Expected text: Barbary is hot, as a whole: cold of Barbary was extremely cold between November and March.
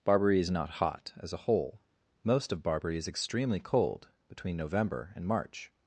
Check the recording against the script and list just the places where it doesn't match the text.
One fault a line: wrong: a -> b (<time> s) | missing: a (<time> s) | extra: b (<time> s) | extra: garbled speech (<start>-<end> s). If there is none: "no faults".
extra: not (0.5 s)
wrong: cold -> most (2.2 s)
wrong: was -> is (3.0 s)